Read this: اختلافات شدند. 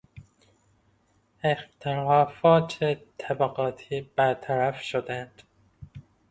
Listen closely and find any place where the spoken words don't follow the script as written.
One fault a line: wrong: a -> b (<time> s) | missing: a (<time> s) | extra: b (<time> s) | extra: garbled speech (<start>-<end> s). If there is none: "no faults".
extra: طبقاتی برطرف (3.2 s)